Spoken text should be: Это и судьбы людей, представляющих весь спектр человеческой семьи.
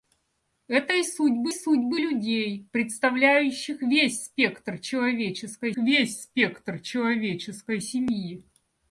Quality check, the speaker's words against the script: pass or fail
fail